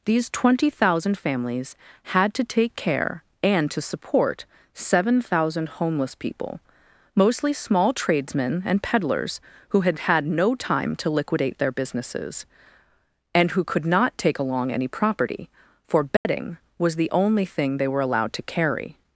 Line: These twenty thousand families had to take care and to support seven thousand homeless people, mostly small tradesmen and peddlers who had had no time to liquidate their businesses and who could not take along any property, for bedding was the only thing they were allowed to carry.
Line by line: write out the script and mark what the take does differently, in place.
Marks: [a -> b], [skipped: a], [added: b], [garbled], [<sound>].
These twenty thousand families had to take care and to support seven thousand homeless people, mostly small tradesmen and peddlers who had had no time to liquidate their businesses and who could not take along any property, for bedding [dropout] was the only thing they were allowed to carry.